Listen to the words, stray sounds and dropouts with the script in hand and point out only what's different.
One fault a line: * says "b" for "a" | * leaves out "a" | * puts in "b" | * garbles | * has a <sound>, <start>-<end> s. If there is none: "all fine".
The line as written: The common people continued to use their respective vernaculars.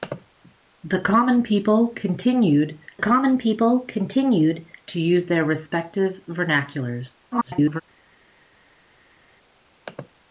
* puts in "common people continued"
* garbles